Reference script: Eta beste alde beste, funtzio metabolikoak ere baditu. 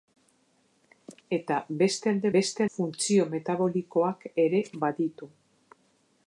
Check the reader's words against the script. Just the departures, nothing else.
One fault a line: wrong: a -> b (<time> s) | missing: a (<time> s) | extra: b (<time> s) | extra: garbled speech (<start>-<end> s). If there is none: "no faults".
no faults